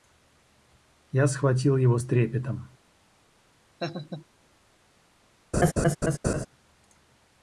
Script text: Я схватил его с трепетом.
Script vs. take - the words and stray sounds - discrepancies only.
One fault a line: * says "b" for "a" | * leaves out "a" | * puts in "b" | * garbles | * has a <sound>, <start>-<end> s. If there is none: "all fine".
* has a laugh, 3.8-4.3 s
* has a laugh, 5.5-6.5 s